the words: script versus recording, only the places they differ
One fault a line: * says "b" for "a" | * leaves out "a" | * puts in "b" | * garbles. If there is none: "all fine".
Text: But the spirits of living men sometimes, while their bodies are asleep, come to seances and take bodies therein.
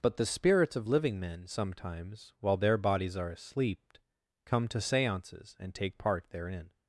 * says "part" for "bodies"